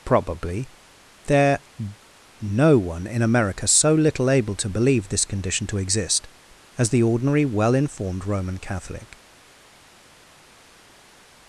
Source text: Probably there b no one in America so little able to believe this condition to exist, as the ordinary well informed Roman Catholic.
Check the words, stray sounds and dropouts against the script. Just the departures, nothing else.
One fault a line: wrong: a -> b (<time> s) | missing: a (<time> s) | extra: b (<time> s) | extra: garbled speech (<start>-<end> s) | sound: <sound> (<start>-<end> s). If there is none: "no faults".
missing: b (1.6 s)